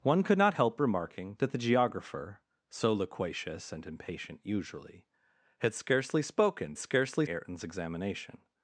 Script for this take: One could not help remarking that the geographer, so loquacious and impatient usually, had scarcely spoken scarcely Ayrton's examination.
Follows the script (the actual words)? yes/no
yes